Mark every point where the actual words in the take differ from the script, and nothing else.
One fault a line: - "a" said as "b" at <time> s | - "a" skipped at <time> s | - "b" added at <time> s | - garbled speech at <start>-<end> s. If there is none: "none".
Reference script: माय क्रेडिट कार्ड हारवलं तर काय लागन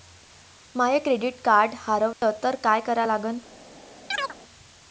- "करा" added at 2.8 s